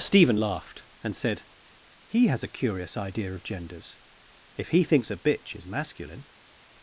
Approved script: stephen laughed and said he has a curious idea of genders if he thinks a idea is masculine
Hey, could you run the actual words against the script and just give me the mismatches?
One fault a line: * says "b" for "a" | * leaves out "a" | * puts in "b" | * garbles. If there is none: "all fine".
* says "bitch" for "idea"